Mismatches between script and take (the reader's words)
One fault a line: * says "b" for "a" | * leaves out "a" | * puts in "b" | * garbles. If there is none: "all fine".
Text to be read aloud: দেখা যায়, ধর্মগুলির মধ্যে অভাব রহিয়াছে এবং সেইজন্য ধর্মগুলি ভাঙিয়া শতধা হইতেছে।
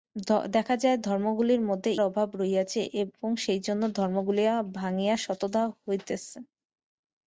all fine